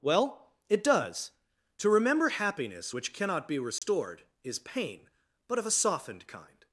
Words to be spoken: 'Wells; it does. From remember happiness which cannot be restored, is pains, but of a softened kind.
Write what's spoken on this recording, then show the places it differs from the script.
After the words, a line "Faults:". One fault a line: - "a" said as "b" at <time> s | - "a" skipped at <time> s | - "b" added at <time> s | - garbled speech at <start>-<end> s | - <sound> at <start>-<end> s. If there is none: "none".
'Well; it does. To remember happiness which cannot be restored, is pain, but of a softened kind.
Faults:
- "Wells" said as "Well" at 0.0 s
- "From" said as "To" at 1.8 s
- dropout at 3.8-3.8 s
- "pains" said as "pain" at 4.6 s